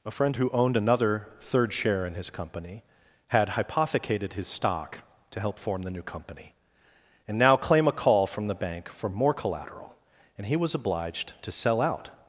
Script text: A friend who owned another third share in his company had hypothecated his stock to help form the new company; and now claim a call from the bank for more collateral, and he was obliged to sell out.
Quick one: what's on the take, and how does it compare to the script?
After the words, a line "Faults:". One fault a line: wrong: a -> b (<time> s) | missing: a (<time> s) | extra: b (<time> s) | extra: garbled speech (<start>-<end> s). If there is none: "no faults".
A friend who owned another third share in his company had hypothecated his stock to help form the new company; and now claim a call from the bank for more collateral, and he was obliged to sell out.
Faults:
no faults